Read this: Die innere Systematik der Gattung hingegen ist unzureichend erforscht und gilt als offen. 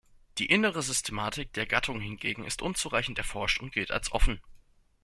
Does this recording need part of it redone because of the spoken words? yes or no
no